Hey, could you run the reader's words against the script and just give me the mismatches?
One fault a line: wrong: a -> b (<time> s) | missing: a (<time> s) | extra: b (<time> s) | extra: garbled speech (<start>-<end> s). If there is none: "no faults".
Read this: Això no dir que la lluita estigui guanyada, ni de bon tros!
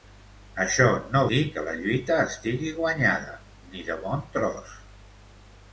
no faults